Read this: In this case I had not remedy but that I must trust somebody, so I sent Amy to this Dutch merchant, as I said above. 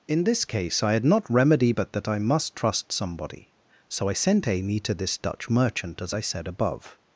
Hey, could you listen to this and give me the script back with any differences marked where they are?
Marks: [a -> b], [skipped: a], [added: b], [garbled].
In this case I had not remedy but that I must trust somebody, so I sent Amy to this Dutch merchant, as I said above.